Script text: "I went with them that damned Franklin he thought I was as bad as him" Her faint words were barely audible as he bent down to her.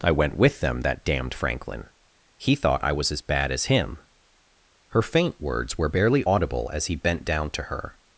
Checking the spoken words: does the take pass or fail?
pass